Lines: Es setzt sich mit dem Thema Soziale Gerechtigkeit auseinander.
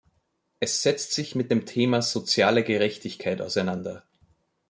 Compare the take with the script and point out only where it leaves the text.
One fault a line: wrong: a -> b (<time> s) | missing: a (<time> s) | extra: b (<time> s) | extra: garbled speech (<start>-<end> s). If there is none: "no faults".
no faults